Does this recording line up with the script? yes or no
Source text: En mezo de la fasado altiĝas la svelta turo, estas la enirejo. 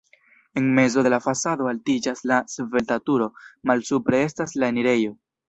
no